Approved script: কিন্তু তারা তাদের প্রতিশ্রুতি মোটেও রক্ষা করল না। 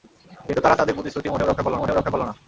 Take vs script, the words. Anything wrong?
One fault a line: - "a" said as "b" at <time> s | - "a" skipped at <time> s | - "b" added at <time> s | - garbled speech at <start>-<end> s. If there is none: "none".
- "মোটেও রক্ষা করল" added at 1.8 s